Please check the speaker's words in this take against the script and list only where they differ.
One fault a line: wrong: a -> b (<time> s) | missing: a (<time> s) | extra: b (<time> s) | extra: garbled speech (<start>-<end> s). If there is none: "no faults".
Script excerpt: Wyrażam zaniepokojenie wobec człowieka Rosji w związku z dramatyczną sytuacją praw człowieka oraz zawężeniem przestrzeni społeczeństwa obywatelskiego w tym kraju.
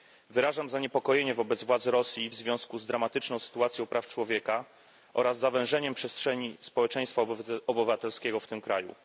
wrong: człowieka -> władz (1.6 s)